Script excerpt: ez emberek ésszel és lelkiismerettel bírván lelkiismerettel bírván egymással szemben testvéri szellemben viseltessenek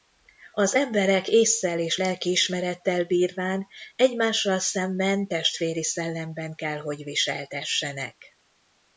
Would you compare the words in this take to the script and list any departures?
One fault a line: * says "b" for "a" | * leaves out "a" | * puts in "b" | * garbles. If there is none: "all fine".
* says "az" for "ez"
* leaves out "lelkiismerettel bírván"
* puts in "kell hogy"